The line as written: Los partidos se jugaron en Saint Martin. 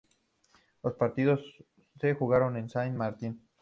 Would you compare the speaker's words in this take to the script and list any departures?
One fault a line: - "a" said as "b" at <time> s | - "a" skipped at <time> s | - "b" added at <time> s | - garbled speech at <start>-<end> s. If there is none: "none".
none